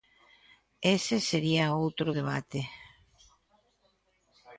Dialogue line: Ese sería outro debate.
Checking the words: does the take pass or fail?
pass